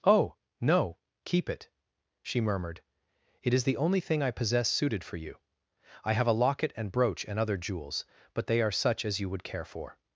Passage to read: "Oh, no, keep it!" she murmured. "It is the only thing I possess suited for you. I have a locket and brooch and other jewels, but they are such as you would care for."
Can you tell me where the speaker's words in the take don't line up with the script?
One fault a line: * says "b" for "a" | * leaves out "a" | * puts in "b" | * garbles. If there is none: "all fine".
all fine